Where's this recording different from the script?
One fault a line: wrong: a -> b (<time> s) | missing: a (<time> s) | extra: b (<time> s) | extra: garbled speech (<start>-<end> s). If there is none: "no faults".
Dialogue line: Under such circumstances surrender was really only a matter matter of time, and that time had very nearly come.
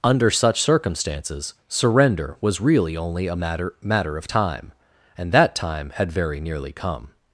no faults